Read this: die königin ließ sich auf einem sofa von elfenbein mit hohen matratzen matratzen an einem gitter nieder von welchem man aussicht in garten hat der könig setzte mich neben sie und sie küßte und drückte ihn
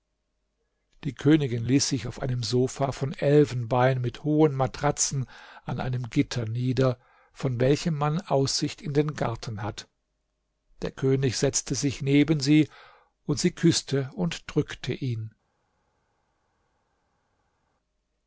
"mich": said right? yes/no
no